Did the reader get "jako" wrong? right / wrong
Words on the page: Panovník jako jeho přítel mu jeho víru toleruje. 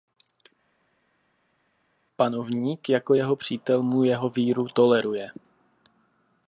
right